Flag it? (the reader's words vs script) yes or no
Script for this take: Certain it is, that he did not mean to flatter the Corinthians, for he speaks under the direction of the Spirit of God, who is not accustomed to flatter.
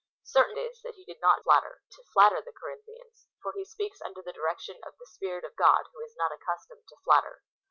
yes